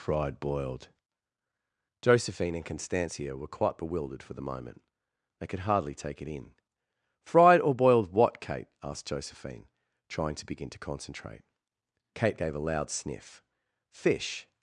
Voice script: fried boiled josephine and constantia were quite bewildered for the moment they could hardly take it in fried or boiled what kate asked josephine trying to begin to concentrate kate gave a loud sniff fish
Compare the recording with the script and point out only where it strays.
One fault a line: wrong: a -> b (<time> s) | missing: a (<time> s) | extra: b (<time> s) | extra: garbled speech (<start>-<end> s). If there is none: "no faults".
no faults